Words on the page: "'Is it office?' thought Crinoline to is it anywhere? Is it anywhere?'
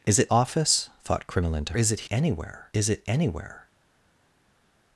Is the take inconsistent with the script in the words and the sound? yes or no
no